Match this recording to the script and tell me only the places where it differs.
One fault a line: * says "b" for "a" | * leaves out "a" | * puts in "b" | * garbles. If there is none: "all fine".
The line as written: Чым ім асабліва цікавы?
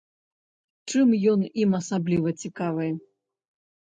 * puts in "ён"